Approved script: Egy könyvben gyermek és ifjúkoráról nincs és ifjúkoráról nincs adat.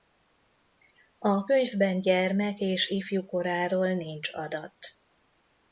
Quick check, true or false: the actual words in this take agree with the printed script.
false